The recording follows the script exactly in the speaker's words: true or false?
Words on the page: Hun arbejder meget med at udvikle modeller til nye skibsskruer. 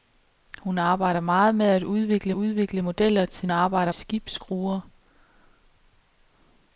false